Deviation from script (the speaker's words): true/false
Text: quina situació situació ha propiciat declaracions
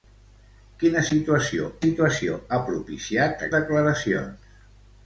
false